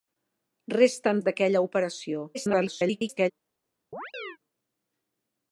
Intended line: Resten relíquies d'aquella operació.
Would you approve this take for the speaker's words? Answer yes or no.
no